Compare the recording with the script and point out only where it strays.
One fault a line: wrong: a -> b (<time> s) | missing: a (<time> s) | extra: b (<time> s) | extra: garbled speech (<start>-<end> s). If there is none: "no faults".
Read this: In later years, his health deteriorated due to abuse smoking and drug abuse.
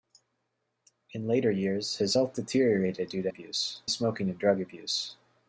no faults